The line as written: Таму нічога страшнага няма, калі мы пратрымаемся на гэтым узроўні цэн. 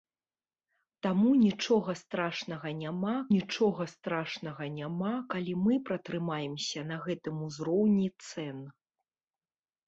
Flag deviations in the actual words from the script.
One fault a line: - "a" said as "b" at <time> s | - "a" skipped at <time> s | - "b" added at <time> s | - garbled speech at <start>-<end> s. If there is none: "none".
- "нічога страшнага няма" added at 3.4 s